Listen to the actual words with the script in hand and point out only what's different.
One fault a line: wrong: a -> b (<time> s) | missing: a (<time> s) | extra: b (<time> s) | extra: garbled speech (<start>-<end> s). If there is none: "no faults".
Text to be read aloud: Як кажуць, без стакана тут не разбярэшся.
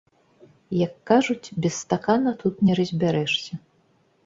no faults